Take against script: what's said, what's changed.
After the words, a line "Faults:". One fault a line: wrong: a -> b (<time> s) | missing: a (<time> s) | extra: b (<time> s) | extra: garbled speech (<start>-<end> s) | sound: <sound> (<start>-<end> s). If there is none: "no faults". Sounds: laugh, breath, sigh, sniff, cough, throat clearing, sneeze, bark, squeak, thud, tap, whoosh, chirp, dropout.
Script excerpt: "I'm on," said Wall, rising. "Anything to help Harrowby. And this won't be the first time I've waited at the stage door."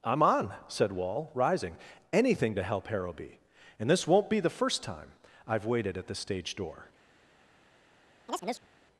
"I'm on," said Wall, rising. "Anything to help Harrowby. And this won't be the first time I've waited at the stage door."
Faults:
sound: chirp (8.3-8.7 s)